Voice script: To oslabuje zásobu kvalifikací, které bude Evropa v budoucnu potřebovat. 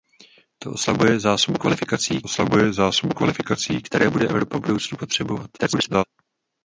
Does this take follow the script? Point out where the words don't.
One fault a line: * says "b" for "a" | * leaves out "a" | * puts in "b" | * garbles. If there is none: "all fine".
* puts in "oslabuje zásobu kvalifikací"
* garbles